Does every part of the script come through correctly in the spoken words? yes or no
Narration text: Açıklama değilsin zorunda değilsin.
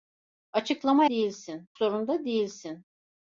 yes